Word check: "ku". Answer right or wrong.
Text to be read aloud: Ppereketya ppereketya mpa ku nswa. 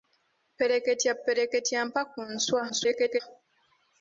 right